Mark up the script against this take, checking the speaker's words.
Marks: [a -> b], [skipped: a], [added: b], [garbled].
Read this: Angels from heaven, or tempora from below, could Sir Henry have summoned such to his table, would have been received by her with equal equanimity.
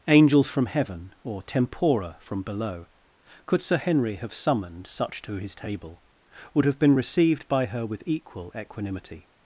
Angels from heaven, or tempora from below, could Sir Henry have summoned such to his table, would have been received by her with equal equanimity.